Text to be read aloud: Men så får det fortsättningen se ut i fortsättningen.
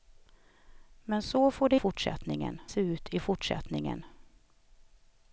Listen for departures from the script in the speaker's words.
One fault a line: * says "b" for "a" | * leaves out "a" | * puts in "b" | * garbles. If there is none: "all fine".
all fine